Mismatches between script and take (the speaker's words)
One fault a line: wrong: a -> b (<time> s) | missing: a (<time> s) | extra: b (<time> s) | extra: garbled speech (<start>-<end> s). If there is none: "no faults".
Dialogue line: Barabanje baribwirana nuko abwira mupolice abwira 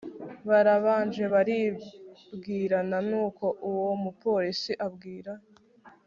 wrong: abwira -> uwo (3.7 s)